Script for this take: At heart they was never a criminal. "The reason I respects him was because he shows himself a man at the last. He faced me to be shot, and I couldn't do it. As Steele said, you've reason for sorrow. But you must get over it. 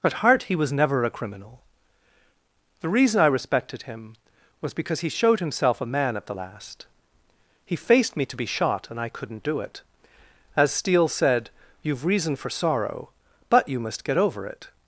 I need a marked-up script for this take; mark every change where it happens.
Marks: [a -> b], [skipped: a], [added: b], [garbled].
At heart [they -> he] was never a criminal. "The reason I [respects -> respected] him was because he [shows -> showed] himself a man at the last. He faced me to be shot, and I couldn't do it. As Steele said, you've reason for sorrow. But you must get over it.